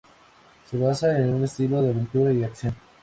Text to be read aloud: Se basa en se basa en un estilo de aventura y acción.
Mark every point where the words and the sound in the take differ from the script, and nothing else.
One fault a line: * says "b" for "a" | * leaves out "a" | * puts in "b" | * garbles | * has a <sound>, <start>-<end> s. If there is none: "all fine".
* leaves out "se basa en"